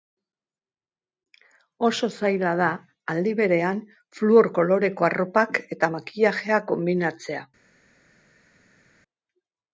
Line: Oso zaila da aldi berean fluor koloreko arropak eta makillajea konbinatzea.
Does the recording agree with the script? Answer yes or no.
yes